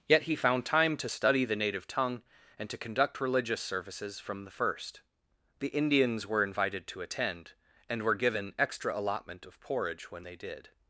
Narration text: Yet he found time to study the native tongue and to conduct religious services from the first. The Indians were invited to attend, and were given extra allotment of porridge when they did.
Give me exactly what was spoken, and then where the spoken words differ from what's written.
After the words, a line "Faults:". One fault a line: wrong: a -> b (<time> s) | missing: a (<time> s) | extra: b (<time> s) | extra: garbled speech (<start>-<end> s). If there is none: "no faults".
Yet he found time to study the native tongue and to conduct religious services from the first. The Indians were invited to attend, and were given extra allotment of porridge when they did.
Faults:
no faults